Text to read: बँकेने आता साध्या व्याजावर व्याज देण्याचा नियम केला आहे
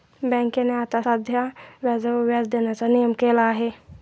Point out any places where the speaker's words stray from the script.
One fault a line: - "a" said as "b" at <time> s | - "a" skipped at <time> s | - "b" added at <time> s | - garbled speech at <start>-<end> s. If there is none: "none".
none